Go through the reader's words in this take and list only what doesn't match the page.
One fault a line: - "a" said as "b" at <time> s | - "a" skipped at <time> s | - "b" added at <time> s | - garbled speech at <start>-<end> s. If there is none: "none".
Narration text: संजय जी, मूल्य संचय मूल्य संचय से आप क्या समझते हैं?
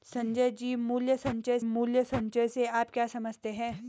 none